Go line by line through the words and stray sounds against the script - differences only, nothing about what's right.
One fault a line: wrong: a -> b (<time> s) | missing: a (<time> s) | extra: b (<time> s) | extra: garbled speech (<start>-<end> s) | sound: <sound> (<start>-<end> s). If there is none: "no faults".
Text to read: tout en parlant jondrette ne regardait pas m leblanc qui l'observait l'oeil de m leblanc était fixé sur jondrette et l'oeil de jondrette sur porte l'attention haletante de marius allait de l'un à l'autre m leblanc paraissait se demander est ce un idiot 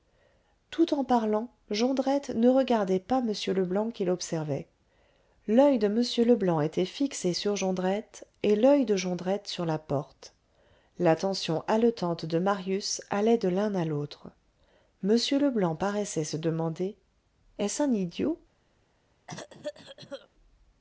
extra: la (9.7 s)
sound: cough (19.3-20.3 s)